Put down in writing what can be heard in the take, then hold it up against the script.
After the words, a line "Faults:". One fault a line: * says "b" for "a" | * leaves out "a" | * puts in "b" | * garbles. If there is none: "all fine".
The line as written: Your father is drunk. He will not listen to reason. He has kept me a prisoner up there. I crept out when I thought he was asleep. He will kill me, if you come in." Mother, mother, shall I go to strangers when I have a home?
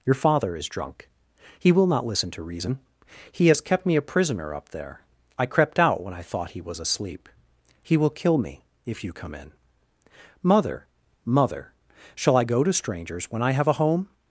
Your father is drunk. He will not listen to reason. He has kept me a prisoner up there. I crept out when I thought he was asleep. He will kill me, if you come in." Mother, mother, shall I go to strangers when I have a home?
Faults:
all fine